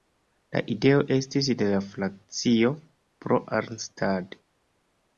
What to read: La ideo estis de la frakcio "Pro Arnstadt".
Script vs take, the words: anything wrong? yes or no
no